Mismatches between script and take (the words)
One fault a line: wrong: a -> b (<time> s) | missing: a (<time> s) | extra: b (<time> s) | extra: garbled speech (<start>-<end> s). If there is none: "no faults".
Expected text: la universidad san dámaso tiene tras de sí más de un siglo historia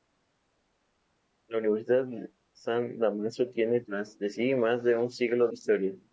no faults